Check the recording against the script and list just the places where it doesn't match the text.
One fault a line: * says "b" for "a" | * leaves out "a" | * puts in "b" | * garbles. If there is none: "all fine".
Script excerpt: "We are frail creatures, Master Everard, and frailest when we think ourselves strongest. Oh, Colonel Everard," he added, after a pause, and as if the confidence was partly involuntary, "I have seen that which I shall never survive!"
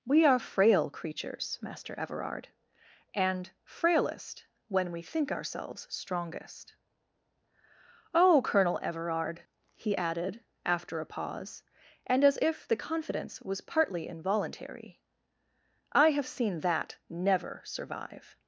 * leaves out "which I shall"